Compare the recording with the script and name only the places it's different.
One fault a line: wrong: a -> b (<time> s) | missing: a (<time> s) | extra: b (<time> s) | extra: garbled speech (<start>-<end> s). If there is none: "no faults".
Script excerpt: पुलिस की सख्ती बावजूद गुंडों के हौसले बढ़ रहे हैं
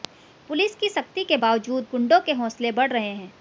extra: के (1.2 s)